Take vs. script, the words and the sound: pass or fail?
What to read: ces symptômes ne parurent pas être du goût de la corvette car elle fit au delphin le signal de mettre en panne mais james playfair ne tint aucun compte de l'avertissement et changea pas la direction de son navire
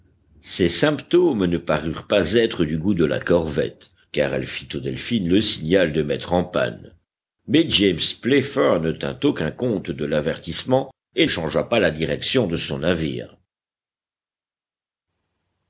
pass